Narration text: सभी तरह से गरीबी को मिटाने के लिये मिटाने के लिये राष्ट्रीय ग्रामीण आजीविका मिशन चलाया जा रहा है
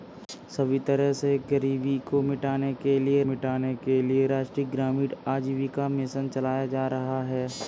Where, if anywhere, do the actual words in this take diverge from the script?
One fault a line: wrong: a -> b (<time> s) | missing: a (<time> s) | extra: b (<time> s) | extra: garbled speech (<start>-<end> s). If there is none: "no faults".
no faults